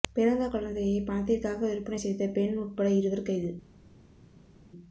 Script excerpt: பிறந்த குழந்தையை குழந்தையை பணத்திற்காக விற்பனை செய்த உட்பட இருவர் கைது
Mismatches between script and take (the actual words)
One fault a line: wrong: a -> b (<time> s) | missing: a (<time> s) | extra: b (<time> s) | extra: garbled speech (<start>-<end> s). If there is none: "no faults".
missing: குழந்தையை (1.0 s)
extra: பெண் (2.3 s)